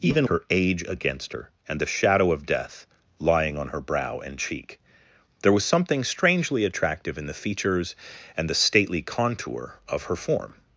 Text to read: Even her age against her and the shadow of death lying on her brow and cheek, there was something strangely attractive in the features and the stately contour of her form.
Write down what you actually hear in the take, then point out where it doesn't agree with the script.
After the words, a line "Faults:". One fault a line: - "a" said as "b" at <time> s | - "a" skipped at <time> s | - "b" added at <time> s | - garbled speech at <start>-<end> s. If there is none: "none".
Even her age against her and the shadow of death lying on her brow and cheek, there was something strangely attractive in the features and the stately contour of her form.
Faults:
none